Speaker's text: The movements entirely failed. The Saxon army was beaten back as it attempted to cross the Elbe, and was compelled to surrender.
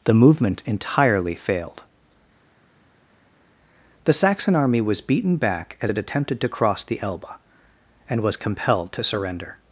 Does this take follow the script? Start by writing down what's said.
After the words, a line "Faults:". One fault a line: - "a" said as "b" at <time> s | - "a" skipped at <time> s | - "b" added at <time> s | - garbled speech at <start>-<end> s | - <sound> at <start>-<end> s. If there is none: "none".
The movement entirely failed. The Saxon army was beaten back as it attempted to cross the Elbe, and was compelled to surrender.
Faults:
- "movements" said as "movement" at 0.1 s